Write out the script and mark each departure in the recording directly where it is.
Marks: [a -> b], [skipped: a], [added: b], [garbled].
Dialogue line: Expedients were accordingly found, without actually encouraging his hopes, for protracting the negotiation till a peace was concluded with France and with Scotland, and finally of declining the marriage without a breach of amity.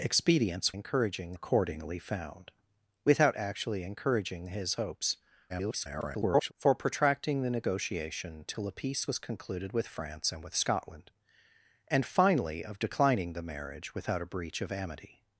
Expedients [were -> encouraging] accordingly found, without actually encouraging his hopes, [garbled] for protracting the negotiation till a peace was concluded with France and with Scotland, and finally of declining the marriage without a breach of amity.